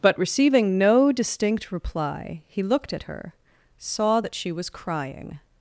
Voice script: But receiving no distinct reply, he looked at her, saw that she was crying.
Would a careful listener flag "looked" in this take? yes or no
no